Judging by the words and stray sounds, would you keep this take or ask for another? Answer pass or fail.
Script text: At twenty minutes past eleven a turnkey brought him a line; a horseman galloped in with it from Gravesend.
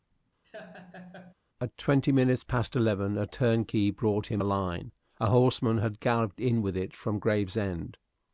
fail